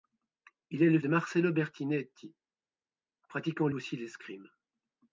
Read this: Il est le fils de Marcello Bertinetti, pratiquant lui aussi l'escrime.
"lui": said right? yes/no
no